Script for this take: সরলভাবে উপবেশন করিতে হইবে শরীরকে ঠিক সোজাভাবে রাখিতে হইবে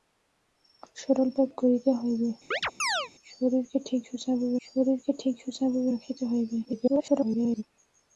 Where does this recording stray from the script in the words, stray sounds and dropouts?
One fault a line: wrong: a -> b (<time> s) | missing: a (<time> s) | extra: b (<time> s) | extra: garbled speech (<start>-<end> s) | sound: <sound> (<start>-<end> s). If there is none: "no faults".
missing: উপবেশন (1.6 s)
sound: chirp (2.5-3.1 s)
extra: শরীরকে ঠিক সোজাভাবে (4.6 s)
extra: garbled speech (6.6-7.6 s)